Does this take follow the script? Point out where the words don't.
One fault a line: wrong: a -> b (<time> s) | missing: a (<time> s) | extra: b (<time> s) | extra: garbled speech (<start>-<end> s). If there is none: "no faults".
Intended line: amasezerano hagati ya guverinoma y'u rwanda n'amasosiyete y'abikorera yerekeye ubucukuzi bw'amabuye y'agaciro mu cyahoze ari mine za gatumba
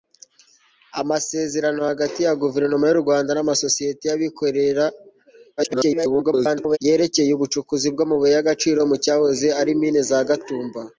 extra: garbled speech (5.6-6.8 s)